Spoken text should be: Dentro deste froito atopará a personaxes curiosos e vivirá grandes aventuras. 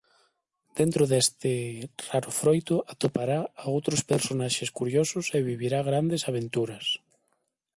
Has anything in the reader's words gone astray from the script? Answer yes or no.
yes